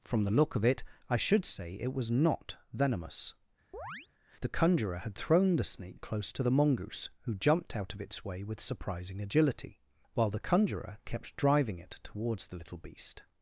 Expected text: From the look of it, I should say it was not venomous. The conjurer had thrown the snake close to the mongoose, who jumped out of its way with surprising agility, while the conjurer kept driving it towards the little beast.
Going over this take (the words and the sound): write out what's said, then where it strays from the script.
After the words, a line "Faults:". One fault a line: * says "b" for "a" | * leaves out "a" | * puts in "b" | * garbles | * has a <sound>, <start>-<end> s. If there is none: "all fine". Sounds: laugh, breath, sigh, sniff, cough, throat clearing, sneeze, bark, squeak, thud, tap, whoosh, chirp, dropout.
From the look of it, I should say it was not venomous. The conjurer had thrown the snake close to the mongoose, who jumped out of its way with surprising agility, while the conjurer kept driving it towards the little beast.
Faults:
* has a chirp, 3.7-4.1 s